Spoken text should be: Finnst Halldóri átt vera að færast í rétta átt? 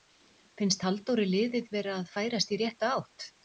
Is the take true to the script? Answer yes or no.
no